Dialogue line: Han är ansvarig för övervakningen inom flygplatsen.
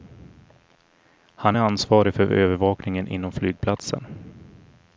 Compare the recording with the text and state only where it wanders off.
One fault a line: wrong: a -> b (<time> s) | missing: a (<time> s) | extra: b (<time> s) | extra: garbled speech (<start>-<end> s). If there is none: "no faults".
no faults